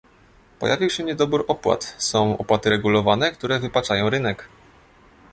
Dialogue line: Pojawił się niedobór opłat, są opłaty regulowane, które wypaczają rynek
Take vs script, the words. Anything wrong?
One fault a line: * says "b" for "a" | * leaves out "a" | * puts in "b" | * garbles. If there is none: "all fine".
all fine